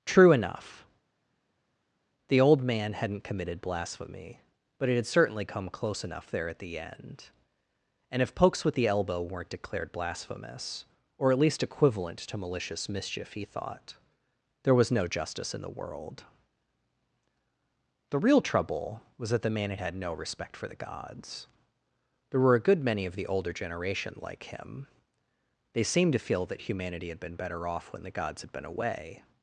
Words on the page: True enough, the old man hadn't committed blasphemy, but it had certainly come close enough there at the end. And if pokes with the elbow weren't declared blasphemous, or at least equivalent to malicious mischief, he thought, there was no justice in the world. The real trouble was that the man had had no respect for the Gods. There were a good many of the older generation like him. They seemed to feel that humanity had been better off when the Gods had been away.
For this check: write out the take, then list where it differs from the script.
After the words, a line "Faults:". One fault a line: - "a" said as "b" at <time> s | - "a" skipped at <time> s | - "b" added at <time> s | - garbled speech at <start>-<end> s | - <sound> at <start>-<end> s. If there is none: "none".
True enough, the old man hadn't committed blasphemy, but it had certainly come close enough there at the end. And if pokes with the elbow weren't declared blasphemous, or at least equivalent to malicious mischief, he thought, there was no justice in the world. The real trouble was that the man had had no respect for the Gods. There were a good many of the older generation like him. They seemed to feel that humanity had been better off when the Gods had been away.
Faults:
none